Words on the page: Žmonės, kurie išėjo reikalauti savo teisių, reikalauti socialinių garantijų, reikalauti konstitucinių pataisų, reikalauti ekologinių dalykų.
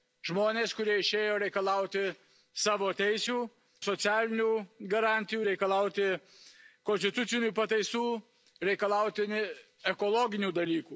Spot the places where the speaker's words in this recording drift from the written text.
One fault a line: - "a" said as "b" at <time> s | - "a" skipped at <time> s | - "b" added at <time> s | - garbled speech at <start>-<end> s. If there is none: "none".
- "reikalauti" skipped at 3.4 s